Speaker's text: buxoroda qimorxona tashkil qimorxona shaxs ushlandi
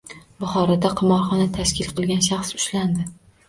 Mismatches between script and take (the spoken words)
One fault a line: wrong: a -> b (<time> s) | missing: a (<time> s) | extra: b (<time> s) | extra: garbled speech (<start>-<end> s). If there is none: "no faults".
wrong: qimorxona -> qilgan (2.0 s)